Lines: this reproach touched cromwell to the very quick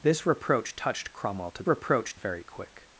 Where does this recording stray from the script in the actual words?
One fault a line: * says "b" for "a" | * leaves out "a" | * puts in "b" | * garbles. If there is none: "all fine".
* says "reproach" for "the"